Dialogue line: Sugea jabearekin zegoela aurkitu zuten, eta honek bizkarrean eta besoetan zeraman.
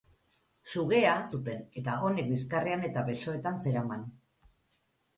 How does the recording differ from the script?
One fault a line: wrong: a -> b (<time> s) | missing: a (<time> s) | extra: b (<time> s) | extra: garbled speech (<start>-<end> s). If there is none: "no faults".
missing: jabearekin zegoela aurkitu (1.1 s)